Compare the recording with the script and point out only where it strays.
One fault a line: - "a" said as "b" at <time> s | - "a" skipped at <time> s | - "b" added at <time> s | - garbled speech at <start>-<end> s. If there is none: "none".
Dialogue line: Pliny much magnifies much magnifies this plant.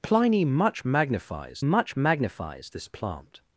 none